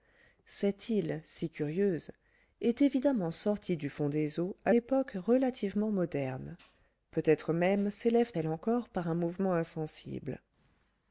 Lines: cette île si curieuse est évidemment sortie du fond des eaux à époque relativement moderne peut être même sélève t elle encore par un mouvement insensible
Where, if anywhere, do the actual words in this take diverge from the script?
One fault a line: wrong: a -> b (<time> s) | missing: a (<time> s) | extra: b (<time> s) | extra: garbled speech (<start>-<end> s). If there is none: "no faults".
no faults